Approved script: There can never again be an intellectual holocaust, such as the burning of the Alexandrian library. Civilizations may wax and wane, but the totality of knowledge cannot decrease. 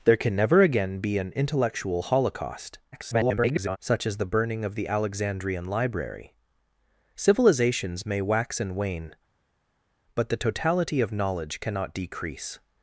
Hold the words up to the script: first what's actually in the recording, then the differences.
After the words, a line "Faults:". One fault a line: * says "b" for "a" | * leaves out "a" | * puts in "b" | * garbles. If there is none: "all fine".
There can never again be an intellectual holocaust, [garbled] such as the burning of the Alexandrian library. Civilizations may wax and wane, but the totality of knowledge cannot decrease.
Faults:
* garbles